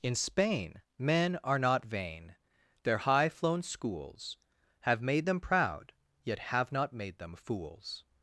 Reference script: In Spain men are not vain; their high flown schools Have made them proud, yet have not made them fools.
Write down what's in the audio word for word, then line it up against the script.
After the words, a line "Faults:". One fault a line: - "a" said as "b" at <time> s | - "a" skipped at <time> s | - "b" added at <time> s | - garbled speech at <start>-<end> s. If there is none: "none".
In Spain men are not vain; their high flown schools Have made them proud, yet have not made them fools.
Faults:
none